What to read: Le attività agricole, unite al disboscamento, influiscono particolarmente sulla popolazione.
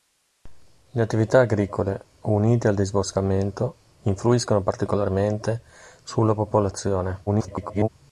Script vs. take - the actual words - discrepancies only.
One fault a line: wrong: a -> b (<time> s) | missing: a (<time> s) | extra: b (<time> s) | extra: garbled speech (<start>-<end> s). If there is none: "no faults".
extra: garbled speech (7.3-7.9 s)